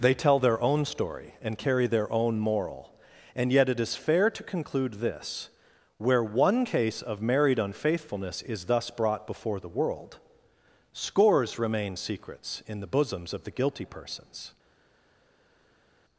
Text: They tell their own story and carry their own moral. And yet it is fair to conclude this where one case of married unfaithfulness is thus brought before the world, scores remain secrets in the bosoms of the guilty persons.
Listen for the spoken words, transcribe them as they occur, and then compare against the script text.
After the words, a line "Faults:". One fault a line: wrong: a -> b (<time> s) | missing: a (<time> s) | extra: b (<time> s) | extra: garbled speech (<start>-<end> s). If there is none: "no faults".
They tell their own story and carry their own moral. And yet it is fair to conclude this where one case of married unfaithfulness is thus brought before the world, scores remain secrets in the bosoms of the guilty persons.
Faults:
no faults